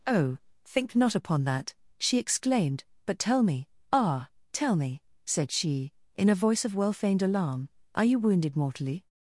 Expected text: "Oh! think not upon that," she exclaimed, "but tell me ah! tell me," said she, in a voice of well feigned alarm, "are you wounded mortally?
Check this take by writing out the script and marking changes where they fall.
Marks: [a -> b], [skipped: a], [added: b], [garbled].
"Oh! think not upon that," she exclaimed, "but tell me ah! tell me," said she, in a voice of well feigned alarm, "are you wounded mortally?